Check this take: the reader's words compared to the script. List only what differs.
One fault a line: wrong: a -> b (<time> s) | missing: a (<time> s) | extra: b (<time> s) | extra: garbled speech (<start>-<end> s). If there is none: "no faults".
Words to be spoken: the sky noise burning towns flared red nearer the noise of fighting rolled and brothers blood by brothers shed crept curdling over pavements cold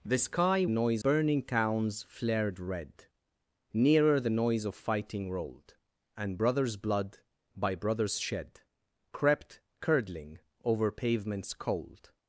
no faults